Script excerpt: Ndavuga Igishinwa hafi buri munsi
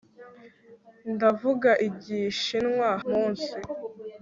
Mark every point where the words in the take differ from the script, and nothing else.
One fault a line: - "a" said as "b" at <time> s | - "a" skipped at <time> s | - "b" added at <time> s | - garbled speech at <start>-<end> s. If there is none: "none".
- "hafi buri" skipped at 2.9 s